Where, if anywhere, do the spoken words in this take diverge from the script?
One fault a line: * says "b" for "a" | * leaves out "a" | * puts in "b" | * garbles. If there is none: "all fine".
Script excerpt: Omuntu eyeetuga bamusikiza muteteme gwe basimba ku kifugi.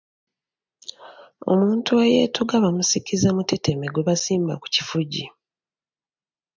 all fine